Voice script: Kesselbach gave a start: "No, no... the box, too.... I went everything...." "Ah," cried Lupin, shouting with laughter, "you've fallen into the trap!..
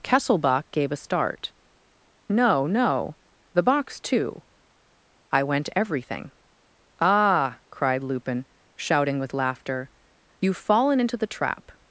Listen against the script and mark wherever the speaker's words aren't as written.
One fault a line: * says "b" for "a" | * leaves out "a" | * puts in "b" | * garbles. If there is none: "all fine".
all fine